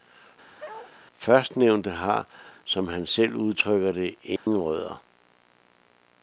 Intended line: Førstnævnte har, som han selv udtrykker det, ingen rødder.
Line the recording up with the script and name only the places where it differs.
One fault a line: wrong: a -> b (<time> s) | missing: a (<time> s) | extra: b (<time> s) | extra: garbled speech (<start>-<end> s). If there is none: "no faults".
no faults